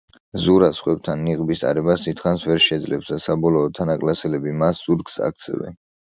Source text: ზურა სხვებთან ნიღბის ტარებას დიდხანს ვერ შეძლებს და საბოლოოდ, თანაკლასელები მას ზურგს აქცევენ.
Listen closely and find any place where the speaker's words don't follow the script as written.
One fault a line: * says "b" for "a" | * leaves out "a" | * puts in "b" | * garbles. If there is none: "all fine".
all fine